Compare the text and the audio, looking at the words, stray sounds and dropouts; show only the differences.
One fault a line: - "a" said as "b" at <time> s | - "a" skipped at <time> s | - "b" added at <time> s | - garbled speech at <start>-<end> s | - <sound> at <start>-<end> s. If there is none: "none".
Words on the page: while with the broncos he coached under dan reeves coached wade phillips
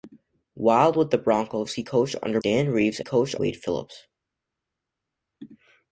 none